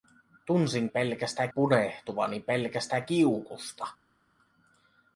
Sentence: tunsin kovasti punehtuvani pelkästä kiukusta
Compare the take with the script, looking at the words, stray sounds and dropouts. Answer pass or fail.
fail